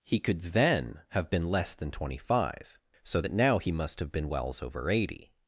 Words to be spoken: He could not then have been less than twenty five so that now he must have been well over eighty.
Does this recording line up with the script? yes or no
no